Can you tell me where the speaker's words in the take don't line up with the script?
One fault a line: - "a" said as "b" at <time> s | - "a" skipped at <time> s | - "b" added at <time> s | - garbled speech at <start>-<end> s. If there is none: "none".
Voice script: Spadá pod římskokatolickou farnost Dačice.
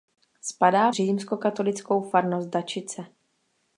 - "pod" skipped at 0.9 s